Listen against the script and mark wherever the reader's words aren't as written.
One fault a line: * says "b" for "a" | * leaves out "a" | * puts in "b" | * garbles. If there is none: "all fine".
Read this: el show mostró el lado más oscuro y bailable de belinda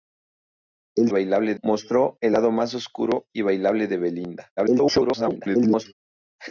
* says "bailable" for "show"
* garbles